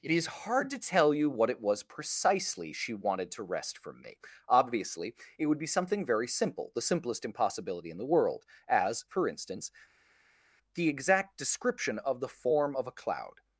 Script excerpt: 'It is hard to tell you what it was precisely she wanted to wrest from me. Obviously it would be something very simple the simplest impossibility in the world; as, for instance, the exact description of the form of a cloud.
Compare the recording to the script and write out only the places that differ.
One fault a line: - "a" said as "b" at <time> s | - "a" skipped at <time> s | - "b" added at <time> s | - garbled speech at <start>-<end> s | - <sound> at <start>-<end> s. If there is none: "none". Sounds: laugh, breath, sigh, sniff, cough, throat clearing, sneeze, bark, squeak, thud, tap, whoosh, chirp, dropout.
none